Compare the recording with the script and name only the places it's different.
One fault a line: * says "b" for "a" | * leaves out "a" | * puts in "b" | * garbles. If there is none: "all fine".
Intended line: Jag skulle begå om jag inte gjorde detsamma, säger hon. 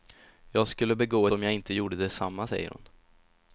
all fine